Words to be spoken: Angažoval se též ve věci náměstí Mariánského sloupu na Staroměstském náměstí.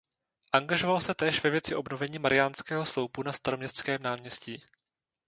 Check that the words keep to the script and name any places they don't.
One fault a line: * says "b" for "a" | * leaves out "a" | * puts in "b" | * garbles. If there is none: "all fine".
* says "obnovení" for "náměstí"